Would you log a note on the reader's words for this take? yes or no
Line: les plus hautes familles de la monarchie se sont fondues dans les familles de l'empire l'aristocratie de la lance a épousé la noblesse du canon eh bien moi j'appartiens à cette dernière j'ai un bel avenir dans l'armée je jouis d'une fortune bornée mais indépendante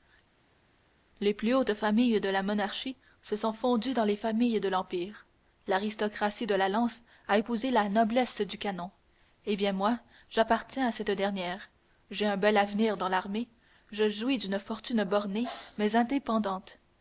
no